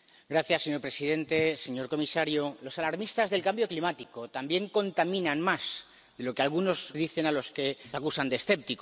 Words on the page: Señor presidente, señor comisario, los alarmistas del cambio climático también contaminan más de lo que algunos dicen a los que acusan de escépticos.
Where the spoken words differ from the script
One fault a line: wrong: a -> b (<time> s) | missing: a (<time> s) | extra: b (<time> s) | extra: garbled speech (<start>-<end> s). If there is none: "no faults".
no faults